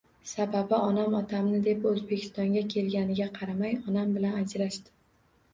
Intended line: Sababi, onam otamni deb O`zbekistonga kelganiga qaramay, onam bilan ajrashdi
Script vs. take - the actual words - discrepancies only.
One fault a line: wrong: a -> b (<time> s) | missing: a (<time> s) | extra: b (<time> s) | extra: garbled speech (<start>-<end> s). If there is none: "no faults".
no faults